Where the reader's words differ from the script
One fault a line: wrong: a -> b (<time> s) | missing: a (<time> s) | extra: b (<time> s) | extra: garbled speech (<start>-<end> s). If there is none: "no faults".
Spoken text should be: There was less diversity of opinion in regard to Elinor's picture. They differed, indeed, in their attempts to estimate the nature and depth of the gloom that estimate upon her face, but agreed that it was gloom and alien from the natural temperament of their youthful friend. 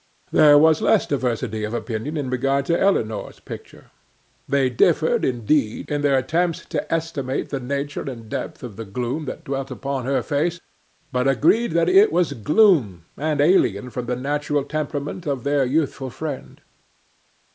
wrong: estimate -> dwelt (9.4 s)